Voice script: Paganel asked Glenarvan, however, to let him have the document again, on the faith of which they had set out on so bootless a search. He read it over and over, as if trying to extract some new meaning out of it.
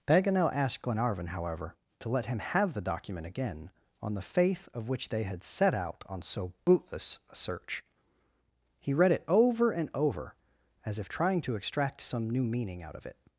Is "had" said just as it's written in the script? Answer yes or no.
yes